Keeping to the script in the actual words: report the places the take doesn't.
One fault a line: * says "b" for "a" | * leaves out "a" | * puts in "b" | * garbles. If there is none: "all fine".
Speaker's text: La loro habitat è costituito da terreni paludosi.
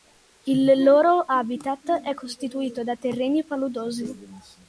* says "Il" for "La"